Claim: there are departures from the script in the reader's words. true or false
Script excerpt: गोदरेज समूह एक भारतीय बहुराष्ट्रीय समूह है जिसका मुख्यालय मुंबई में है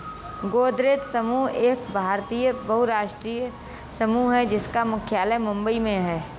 false